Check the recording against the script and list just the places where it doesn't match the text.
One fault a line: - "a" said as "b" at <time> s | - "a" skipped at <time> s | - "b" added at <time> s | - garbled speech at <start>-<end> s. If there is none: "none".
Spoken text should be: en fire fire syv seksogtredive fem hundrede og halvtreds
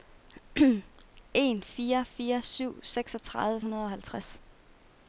- "fem" skipped at 3.6 s